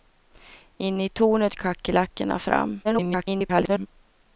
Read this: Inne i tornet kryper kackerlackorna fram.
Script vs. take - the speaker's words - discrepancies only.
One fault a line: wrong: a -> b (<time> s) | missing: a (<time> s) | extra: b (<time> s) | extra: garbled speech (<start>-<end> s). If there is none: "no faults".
missing: kryper (1.6 s)
extra: garbled speech (2.8-3.9 s)